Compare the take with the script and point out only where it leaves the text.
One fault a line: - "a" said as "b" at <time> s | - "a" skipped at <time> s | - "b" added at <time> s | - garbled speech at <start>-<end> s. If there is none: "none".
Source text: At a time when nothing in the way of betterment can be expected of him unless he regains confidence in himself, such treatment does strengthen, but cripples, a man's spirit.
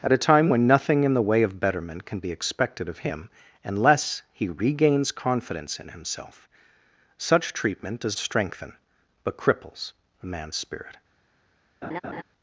none